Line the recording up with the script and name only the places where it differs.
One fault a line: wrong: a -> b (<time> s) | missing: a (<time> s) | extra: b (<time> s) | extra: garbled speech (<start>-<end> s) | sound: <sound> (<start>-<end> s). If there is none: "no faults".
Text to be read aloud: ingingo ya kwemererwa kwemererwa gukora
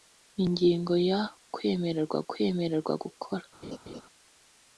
sound: laugh (3.6-4.0 s)